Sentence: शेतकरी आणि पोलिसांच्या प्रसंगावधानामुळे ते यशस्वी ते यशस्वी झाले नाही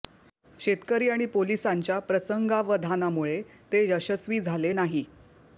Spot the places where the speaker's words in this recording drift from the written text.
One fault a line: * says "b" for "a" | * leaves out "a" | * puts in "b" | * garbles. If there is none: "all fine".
* leaves out "ते यशस्वी"